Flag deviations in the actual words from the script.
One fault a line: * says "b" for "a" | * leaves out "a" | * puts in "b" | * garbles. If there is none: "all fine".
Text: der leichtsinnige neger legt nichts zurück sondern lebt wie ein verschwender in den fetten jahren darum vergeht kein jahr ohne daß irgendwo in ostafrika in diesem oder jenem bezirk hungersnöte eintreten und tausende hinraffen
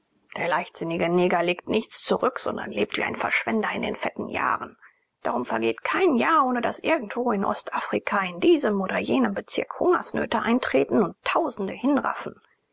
all fine